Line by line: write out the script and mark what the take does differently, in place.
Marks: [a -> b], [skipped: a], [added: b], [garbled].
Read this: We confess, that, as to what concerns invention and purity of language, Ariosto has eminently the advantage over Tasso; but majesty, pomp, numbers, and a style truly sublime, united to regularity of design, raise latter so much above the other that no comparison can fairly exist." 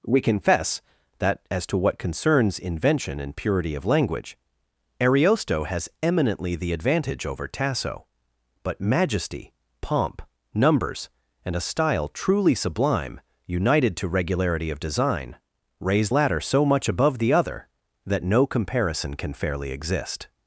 We confess, that, as to what concerns invention and purity of language, Ariosto has eminently the advantage over Tasso; but majesty, pomp, numbers, and a style truly sublime, united to regularity of design, raise latter so much above the other that no comparison can fairly exist."